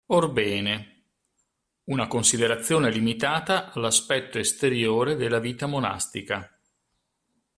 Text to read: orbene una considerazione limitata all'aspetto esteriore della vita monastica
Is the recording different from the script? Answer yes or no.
no